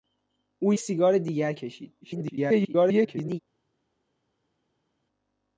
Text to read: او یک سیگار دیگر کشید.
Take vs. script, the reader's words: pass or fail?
fail